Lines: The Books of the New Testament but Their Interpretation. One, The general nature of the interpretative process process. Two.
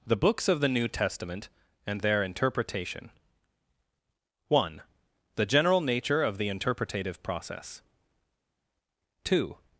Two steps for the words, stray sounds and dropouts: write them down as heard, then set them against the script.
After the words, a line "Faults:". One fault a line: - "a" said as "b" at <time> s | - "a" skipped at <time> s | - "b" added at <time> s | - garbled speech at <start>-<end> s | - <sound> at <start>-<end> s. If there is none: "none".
The Books of the New Testament and Their Interpretation. One, The general nature of the interpretative process. Two.
Faults:
- "but" said as "and" at 1.9 s
- "process" skipped at 7.8 s